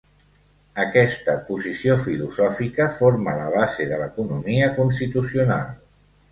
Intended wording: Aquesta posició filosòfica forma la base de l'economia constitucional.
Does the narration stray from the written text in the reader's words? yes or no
no